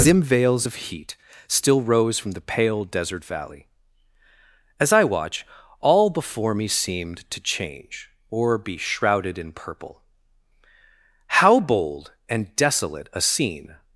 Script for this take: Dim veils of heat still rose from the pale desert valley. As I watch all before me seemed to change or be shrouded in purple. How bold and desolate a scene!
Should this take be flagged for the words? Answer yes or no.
no